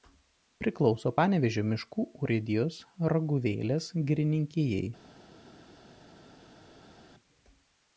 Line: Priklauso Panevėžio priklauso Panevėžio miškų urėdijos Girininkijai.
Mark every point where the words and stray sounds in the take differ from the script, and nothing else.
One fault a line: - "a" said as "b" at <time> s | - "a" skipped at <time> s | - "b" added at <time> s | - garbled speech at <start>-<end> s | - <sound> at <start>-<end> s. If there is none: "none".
- "priklauso Panevėžio" skipped at 1.6 s
- "Raguvėlės" added at 3.1 s